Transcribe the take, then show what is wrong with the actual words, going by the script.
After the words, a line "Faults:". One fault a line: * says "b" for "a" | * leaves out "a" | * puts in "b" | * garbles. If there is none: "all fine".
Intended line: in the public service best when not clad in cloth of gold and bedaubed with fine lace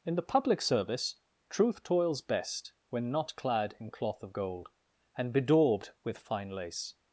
in the public service truth toils best when not clad in cloth of gold and bedaubed with fine lace
Faults:
* puts in "truth toils"